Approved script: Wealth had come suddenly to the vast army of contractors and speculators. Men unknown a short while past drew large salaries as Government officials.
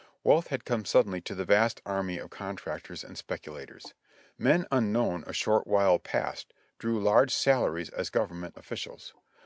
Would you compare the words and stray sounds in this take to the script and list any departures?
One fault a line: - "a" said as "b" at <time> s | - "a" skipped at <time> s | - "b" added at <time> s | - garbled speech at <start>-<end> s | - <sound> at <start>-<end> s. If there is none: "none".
none